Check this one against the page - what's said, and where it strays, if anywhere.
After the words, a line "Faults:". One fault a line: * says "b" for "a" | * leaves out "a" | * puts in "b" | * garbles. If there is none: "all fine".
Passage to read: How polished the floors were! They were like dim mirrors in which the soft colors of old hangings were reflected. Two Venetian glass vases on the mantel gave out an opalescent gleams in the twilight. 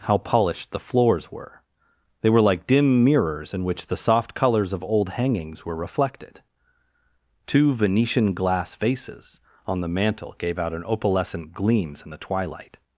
How polished the floors were! They were like dim mirrors in which the soft colors of old hangings were reflected. Two Venetian glass vases on the mantel gave out an opalescent gleams in the twilight.
Faults:
all fine